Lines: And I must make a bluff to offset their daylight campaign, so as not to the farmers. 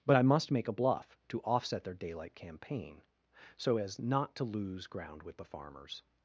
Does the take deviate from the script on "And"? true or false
true